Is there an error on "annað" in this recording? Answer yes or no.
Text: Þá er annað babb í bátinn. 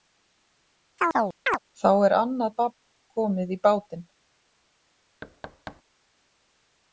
no